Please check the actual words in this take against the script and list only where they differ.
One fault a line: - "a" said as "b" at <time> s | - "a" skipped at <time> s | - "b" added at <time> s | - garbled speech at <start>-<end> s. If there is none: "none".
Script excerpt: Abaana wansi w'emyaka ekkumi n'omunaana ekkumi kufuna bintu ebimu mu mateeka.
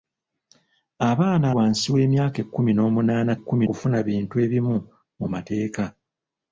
none